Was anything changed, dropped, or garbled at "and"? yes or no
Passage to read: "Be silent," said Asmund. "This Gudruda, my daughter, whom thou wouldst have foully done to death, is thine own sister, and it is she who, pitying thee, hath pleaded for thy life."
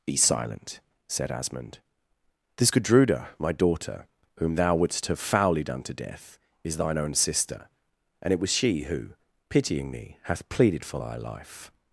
no